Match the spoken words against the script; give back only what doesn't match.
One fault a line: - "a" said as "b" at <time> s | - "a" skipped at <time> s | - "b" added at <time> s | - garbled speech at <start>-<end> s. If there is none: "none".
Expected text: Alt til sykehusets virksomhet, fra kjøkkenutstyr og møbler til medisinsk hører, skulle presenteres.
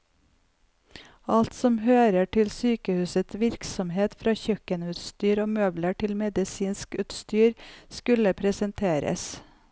- "som hører" added at 1.5 s
- "hører" said as "utstyr" at 7.0 s